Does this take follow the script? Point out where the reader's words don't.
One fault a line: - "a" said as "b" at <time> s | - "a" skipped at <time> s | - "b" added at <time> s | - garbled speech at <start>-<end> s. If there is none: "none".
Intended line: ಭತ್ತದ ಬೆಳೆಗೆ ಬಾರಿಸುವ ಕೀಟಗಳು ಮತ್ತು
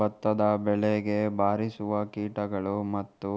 none